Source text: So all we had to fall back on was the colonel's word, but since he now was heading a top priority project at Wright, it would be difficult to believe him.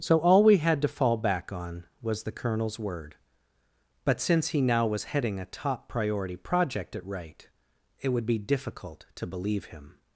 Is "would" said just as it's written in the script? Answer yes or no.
yes